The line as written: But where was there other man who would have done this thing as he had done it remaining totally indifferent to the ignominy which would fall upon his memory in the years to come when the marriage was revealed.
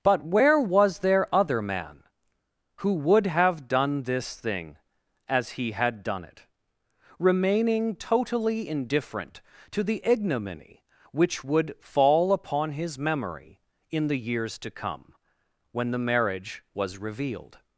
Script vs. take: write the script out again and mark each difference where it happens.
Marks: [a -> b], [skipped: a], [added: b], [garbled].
But where was there other man who would have done this thing as he had done it remaining totally indifferent to the ignominy which would fall upon his memory in the years to come when the marriage was revealed.